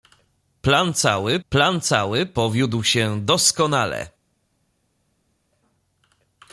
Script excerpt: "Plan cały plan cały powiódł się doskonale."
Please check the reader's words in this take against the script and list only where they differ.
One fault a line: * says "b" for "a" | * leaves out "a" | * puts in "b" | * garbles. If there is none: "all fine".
all fine